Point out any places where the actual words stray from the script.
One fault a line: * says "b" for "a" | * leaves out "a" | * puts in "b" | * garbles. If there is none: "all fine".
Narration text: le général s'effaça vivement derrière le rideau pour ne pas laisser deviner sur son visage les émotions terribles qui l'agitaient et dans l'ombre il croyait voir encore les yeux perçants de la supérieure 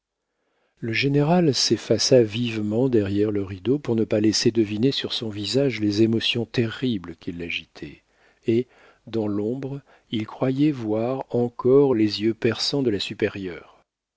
all fine